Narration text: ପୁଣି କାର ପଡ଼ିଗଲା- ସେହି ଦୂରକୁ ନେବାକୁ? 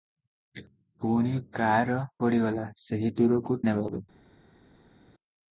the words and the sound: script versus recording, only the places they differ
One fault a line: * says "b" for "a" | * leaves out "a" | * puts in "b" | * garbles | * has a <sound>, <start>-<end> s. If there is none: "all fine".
all fine